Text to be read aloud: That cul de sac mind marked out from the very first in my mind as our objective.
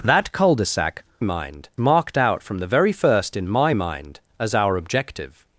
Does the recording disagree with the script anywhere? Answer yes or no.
no